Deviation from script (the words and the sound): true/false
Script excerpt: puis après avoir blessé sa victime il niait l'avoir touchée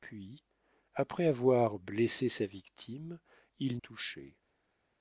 true